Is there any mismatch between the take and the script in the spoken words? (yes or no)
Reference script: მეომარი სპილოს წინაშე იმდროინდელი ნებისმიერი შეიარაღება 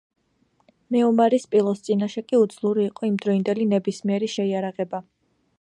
yes